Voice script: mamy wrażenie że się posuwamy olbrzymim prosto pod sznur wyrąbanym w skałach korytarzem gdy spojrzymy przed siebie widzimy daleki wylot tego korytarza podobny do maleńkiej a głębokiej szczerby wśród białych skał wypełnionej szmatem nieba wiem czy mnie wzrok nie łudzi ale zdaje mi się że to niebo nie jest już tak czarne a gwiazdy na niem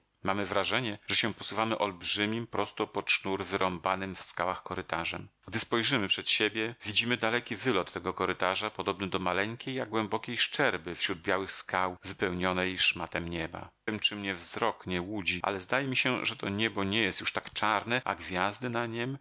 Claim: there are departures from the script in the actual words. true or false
false